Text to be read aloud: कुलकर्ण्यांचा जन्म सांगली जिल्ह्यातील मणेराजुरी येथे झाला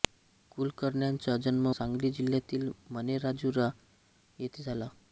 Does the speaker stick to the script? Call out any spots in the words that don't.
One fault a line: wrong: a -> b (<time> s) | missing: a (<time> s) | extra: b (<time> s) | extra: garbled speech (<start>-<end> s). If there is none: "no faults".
no faults